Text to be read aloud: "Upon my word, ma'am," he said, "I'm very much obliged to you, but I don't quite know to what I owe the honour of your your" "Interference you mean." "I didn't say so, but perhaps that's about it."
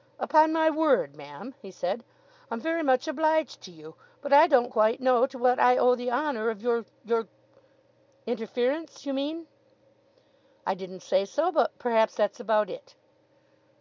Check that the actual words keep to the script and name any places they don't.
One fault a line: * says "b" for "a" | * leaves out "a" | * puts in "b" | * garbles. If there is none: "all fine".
all fine